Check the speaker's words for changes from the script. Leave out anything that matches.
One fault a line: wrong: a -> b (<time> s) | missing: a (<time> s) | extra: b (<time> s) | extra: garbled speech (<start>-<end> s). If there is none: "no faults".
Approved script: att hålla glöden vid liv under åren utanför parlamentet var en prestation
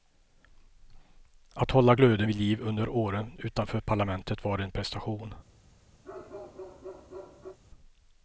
no faults